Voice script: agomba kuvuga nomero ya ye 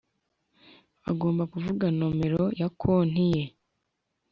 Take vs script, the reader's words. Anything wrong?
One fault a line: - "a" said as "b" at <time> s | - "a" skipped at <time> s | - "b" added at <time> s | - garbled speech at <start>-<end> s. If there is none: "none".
- "konti" added at 2.8 s